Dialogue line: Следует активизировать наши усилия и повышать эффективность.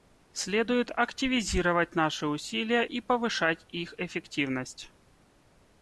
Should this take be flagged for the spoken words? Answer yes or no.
yes